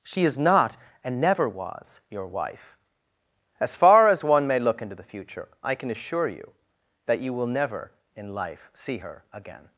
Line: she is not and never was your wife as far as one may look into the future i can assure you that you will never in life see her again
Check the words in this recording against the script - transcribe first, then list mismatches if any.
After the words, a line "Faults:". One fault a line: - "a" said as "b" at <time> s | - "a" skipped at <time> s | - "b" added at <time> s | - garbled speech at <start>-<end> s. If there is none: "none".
she is not and never was your wife as far as one may look into the future i can assure you that you will never in life see her again
Faults:
none